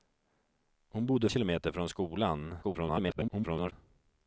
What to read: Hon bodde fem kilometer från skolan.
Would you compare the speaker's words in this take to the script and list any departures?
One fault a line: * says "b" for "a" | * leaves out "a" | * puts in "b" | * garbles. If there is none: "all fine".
* leaves out "fem"
* garbles